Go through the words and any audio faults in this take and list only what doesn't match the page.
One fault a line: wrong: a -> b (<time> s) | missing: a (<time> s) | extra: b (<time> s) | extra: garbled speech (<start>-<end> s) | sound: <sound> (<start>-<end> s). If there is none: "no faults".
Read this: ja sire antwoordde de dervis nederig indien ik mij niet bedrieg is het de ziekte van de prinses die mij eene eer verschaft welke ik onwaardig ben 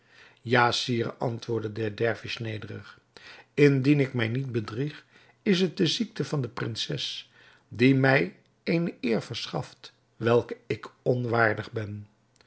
no faults